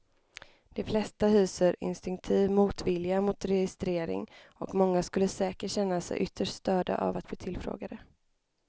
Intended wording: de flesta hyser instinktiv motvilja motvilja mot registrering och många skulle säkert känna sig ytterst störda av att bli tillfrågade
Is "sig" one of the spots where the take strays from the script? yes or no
no